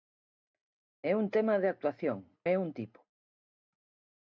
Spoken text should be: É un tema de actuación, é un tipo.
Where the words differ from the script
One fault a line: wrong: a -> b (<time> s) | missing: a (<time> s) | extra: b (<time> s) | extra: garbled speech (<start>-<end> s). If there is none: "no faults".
no faults